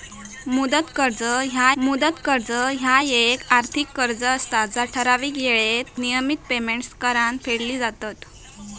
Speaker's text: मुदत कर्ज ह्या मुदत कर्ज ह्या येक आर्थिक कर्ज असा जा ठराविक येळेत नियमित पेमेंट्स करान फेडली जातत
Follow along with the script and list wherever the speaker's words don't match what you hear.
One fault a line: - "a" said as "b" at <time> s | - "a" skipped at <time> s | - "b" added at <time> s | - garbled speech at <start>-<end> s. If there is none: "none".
none